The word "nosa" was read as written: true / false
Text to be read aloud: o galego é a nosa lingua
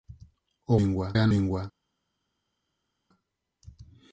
false